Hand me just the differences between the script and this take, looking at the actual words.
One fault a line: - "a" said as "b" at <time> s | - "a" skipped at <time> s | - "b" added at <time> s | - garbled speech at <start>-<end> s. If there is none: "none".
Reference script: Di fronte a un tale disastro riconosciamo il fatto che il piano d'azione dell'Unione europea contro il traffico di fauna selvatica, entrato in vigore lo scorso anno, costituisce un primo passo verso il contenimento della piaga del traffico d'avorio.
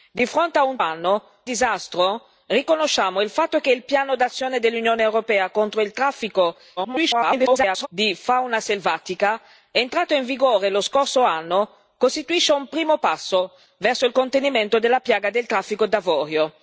- "tale" said as "anno" at 0.8 s
- garbled speech at 6.8-7.9 s